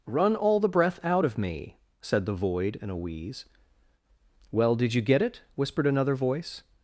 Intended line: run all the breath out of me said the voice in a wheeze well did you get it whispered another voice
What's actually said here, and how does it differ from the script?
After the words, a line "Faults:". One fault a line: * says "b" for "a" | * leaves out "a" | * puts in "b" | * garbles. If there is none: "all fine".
run all the breath out of me said the void in a wheeze well did you get it whispered another voice
Faults:
* says "void" for "voice"